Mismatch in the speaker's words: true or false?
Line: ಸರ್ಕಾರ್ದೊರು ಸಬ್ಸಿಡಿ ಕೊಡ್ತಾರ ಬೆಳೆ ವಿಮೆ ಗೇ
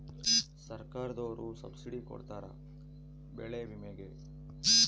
false